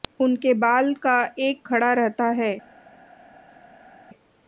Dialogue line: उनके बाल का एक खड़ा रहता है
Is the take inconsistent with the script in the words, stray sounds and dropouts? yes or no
no